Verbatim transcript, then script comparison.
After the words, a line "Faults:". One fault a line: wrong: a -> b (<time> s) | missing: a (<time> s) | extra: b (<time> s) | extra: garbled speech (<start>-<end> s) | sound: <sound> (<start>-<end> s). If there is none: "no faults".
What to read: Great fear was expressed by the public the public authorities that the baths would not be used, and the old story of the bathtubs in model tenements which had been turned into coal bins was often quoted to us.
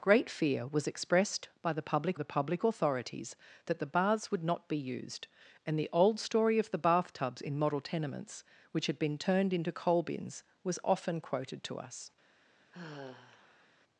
Great fear was expressed by the public the public authorities that the baths would not be used, and the old story of the bathtubs in model tenements which had been turned into coal bins was often quoted to us.
Faults:
sound: sigh (12.7-13.7 s)